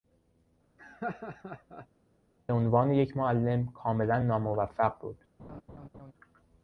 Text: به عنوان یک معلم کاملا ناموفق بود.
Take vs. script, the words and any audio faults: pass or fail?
fail